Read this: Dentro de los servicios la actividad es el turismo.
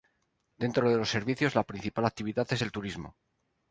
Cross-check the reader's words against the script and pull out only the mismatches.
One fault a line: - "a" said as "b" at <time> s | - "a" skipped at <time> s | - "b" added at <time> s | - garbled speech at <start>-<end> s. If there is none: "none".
- "principal" added at 1.6 s